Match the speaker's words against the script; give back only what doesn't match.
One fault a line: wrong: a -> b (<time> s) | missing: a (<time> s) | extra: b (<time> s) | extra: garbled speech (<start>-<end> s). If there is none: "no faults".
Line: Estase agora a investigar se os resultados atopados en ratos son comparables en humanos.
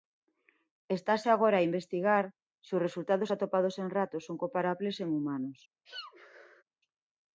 no faults